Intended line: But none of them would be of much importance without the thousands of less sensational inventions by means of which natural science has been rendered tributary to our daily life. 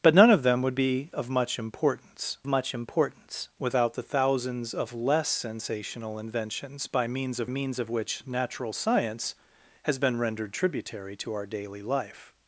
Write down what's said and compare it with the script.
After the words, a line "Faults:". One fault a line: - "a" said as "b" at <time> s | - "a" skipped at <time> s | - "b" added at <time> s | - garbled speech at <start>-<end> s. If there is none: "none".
But none of them would be of much importance much importance without the thousands of less sensational inventions by means of means of which natural science has been rendered tributary to our daily life.
Faults:
- "much importance" added at 2.5 s
- "means of" added at 7.5 s